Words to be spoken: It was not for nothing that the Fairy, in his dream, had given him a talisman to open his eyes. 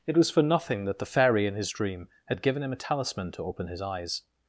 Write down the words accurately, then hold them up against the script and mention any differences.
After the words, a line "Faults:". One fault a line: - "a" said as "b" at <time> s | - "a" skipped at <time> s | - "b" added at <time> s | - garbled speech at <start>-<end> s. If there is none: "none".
It was for nothing that the Fairy, in his dream, had given him a talisman to open his eyes.
Faults:
- "not" skipped at 0.3 s